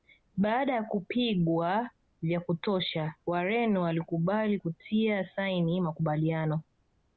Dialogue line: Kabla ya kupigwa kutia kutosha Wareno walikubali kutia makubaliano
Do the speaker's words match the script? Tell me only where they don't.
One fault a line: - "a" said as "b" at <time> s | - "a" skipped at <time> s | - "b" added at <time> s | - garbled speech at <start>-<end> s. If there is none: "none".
- "Kabla" said as "Baada" at 0.4 s
- "kutia" said as "vya" at 2.2 s
- "saini" added at 5.3 s